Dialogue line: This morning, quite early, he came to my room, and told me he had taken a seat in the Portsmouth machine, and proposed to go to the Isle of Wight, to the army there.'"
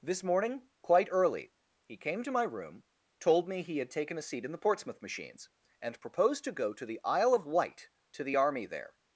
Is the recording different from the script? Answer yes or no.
yes